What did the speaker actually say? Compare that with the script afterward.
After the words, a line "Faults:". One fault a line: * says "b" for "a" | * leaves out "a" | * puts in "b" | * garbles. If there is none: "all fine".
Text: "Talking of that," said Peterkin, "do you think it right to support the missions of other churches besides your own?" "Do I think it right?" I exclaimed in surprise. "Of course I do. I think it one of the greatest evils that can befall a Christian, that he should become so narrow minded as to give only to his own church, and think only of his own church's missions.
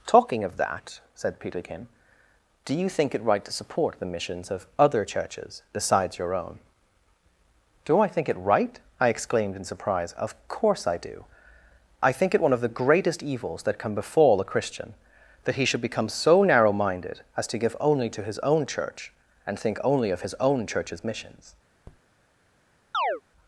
"Talking of that," said Peterkin, "do you think it right to support the missions of other churches besides your own?" "Do I think it right?" I exclaimed in surprise. "Of course I do. I think it one of the greatest evils that can befall a Christian, that he should become so narrow minded as to give only to his own church, and think only of his own church's missions.
Faults:
all fine